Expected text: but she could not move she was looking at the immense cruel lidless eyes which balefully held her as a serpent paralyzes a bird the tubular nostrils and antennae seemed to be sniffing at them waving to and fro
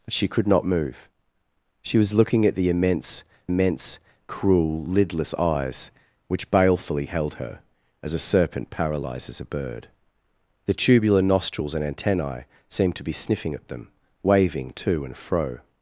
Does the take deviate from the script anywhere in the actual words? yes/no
yes